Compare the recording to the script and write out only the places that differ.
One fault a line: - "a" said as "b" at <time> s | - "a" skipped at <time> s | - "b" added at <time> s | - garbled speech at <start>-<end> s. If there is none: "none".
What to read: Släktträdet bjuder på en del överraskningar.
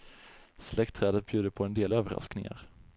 none